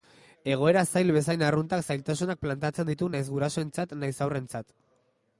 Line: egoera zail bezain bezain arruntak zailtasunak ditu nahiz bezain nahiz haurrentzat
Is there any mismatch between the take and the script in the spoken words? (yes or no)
yes